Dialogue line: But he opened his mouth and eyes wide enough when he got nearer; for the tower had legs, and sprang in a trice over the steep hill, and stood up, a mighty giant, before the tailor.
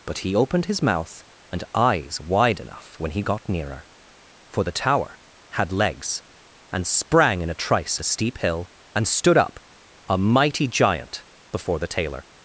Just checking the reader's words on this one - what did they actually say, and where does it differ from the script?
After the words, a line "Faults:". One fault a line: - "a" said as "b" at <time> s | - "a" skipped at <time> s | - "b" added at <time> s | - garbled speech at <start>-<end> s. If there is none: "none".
But he opened his mouth and eyes wide enough when he got nearer; for the tower had legs, and sprang in a trice the steep hill, and stood up, a mighty giant, before the tailor.
Faults:
- "over" skipped at 8.0 s